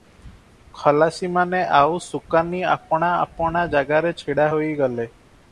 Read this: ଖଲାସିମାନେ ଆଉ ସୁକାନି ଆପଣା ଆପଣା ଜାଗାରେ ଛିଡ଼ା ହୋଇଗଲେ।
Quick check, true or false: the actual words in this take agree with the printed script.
true